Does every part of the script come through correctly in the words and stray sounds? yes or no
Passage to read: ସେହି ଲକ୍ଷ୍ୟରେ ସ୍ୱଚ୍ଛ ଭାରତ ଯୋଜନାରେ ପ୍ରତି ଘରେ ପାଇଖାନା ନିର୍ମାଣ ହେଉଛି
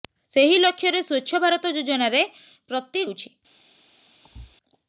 no